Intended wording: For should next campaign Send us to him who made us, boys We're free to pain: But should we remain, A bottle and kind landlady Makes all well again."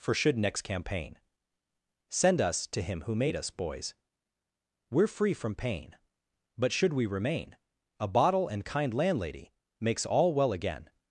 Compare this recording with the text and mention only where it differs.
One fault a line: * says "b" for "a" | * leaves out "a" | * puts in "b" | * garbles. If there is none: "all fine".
* says "from" for "to"